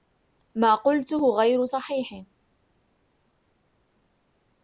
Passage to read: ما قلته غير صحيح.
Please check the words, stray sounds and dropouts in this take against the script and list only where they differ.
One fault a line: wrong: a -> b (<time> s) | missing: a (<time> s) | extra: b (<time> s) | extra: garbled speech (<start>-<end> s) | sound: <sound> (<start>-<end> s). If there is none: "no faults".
no faults